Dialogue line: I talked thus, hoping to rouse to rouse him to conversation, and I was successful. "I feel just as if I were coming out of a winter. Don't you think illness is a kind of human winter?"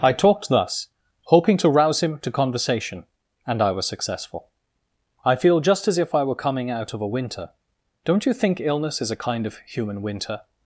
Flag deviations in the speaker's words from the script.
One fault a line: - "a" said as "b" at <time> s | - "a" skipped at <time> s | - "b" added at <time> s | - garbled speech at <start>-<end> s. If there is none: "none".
- "to rouse" skipped at 2.0 s